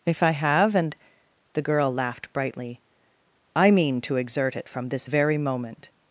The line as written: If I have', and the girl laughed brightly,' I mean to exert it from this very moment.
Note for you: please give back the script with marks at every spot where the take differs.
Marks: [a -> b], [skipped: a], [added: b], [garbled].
If I have', and the girl laughed brightly,' I mean to exert it from this very moment.